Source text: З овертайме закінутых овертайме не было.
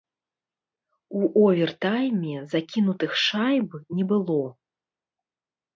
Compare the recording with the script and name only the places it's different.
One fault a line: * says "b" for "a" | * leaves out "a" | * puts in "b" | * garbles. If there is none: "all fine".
* says "У" for "З"
* says "шайб" for "овертайме"